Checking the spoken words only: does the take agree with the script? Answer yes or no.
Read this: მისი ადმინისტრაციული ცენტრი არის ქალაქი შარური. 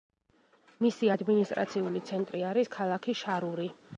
yes